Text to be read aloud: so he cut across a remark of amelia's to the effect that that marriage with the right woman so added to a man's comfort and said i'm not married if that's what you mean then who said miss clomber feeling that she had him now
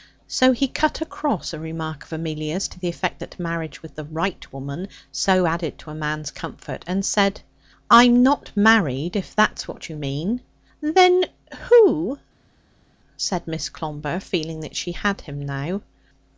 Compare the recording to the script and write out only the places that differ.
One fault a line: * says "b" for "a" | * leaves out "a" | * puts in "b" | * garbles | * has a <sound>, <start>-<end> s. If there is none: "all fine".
* leaves out "that"